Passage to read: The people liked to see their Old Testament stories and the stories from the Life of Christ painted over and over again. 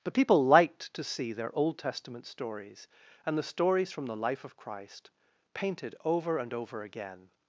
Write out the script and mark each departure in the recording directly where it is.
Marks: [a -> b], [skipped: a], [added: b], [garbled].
[The -> But] people liked to see their Old Testament stories and the stories from the Life of Christ painted over and over again.